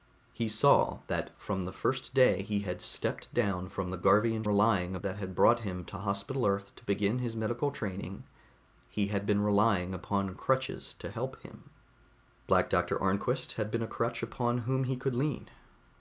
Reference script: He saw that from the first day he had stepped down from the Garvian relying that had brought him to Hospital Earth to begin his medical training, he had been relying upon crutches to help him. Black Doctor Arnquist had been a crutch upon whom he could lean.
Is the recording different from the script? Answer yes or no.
no